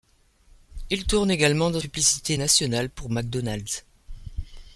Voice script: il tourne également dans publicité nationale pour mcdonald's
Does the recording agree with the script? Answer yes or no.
yes